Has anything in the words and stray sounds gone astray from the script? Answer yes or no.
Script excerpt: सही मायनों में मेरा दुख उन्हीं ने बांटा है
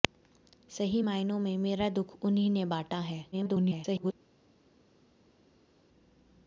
yes